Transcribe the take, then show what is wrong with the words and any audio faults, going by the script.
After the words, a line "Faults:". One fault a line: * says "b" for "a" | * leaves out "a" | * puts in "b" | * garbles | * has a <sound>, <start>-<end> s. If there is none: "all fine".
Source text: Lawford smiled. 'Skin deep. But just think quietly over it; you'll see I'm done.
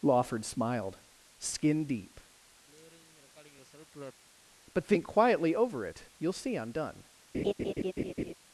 Lawford smiled. 'Skin deep. But think quietly over it; you'll see I'm done.
Faults:
* has a throat clearing, 2.7-4.2 s
* leaves out "just"
* has a laugh, 7.3-8.3 s